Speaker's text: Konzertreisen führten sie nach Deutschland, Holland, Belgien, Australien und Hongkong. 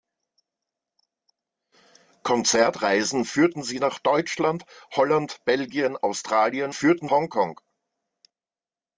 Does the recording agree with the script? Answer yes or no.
no